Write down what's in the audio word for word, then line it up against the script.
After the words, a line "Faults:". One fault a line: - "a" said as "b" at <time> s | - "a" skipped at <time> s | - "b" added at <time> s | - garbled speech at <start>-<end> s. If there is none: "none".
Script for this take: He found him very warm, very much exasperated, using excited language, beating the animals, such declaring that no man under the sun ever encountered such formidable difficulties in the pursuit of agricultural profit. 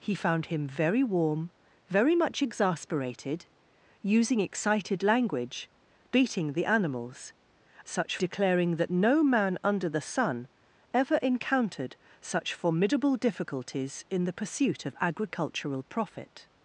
He found him very warm, very much exasperated, using excited language, beating the animals, such declaring that no man under the sun ever encountered such formidable difficulties in the pursuit of agricultural profit.
Faults:
none